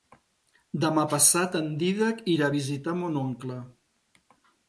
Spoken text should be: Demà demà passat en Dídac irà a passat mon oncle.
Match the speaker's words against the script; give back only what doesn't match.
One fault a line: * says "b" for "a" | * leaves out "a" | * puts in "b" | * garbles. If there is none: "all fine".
* leaves out "demà"
* says "visitar" for "passat"